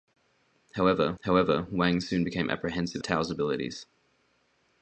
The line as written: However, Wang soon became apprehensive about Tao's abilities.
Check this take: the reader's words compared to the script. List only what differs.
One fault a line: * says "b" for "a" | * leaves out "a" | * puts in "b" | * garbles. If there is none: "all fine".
* puts in "however"
* leaves out "about"